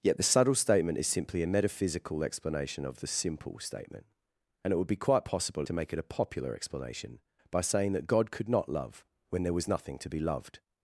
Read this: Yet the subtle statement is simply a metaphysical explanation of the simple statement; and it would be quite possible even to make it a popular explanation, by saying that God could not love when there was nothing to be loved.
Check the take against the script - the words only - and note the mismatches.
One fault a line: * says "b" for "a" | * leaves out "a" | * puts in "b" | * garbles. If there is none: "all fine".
* leaves out "even"